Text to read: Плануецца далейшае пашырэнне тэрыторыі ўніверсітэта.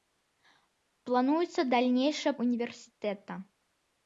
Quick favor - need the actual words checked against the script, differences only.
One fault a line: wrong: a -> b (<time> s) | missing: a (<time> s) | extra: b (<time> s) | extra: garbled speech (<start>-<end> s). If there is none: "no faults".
missing: пашырэнне тэрыторыі (2.3 s)